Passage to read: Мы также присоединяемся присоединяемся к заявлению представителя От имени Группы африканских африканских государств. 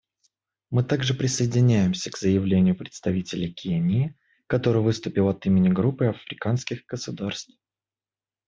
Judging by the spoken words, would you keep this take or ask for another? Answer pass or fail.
fail